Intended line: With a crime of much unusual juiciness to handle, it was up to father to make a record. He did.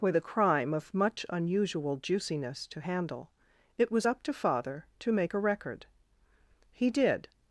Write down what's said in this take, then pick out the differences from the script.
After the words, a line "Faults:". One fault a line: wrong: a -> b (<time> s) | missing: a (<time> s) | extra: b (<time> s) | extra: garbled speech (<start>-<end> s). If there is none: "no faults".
With a crime of much unusual juiciness to handle, it was up to father to make a record. He did.
Faults:
no faults